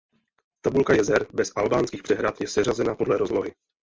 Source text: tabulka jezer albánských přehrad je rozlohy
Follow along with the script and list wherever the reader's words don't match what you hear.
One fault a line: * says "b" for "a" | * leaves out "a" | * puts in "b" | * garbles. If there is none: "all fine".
* puts in "bez"
* puts in "seřazena podle"